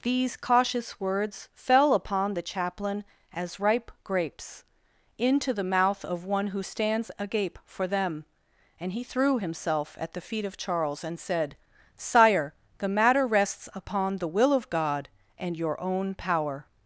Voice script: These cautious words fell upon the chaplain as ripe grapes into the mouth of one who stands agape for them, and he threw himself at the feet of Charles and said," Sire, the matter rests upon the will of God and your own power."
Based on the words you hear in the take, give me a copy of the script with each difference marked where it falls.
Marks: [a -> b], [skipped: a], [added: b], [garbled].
These cautious words fell upon the chaplain as ripe grapes into the mouth of one who stands agape for them, and he threw himself at the feet of Charles and said," Sire, the matter rests upon the will of God and your own power."